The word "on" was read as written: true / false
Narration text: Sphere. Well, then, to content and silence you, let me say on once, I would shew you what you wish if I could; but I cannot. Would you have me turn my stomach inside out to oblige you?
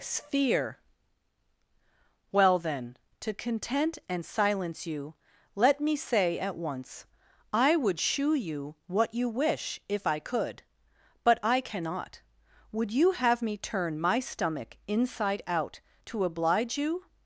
false